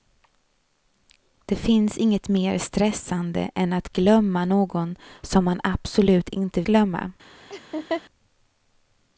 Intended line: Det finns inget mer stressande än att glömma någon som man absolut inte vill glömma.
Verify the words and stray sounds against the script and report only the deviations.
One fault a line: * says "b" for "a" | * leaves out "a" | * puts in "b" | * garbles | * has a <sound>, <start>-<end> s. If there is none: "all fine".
* leaves out "vill"
* has a laugh, 7.5-8.0 s